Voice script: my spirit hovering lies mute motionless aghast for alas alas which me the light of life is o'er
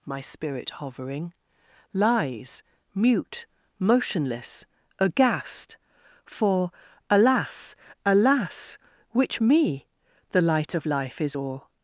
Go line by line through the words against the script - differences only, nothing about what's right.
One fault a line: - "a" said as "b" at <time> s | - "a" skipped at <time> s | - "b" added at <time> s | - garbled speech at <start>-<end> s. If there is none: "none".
none